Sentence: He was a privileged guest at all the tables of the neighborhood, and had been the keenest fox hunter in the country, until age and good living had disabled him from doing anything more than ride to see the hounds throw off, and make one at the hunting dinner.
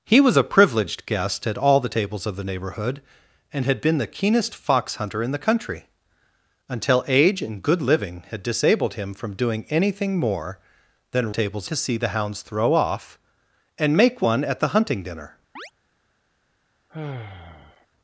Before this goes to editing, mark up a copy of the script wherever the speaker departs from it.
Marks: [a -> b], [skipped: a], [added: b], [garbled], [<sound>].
He was a privileged guest at all the tables of the neighborhood, and had been the keenest fox hunter in the country, until age and good living had disabled him from doing anything more than [ride -> tables] to see the hounds throw off, and make one at the hunting dinner. [chirp] [sigh]